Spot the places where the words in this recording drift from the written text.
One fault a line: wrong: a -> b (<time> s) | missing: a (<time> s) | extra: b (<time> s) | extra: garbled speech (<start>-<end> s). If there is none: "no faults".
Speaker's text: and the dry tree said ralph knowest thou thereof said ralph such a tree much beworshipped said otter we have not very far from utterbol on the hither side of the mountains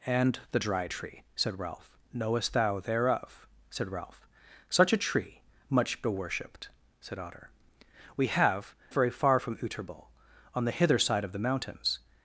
missing: not (8.7 s)